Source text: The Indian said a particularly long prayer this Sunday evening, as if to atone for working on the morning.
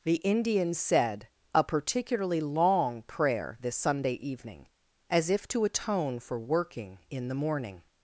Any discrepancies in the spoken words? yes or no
yes